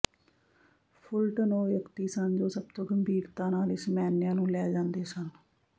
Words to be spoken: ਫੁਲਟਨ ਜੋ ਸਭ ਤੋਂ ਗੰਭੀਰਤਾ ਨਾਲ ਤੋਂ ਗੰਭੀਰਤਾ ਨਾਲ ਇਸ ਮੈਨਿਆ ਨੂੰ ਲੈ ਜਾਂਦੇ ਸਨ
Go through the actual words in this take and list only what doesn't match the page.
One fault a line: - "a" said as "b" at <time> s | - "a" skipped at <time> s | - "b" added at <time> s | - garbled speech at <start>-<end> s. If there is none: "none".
- "ਜੋ ਸਭ ਤੋਂ ਗੰਭੀਰਤਾ ਨਾਲ" said as "ਉਹ ਵਿਅਕਤੀ ਸਨ ਜੋ ਸਭ" at 1.5 s